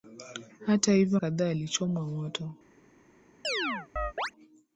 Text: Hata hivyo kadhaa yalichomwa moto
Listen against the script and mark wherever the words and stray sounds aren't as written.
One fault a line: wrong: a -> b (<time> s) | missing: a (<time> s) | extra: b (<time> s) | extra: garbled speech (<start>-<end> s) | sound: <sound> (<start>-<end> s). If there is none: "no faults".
sound: chirp (3.4-4.3 s)